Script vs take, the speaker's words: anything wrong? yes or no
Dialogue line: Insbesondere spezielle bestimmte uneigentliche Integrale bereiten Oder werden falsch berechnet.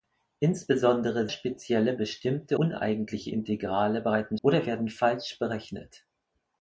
no